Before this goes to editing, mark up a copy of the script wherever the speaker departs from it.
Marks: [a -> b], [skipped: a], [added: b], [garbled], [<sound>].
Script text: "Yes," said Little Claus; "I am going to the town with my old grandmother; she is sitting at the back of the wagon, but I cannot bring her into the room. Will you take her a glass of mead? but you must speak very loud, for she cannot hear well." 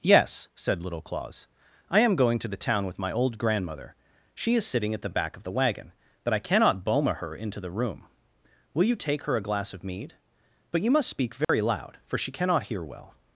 "Yes," said Little Claus; "I am going to the town with my old grandmother; she is sitting at the back of the wagon, but I cannot [bring -> boma] her into the room. Will you take her a glass of mead? but you must speak very [dropout] loud, for she cannot hear well."